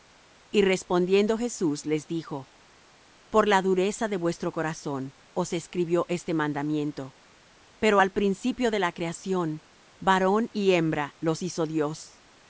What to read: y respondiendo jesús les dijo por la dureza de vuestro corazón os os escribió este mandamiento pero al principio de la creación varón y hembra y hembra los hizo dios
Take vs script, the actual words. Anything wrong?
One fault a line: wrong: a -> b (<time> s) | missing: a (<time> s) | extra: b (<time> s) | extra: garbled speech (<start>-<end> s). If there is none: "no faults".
missing: os (5.5 s)
missing: y hembra (11.2 s)